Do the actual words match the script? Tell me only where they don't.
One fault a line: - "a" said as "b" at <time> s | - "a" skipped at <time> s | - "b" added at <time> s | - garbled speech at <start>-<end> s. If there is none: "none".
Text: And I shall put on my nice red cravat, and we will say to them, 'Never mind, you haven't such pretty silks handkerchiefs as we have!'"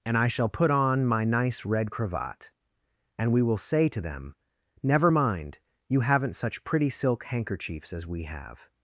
- "silks" said as "silk" at 6.9 s